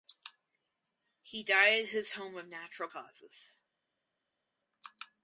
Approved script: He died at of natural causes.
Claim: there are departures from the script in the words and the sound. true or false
true